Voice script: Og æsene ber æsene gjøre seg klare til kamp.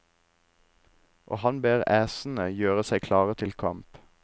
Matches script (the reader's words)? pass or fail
fail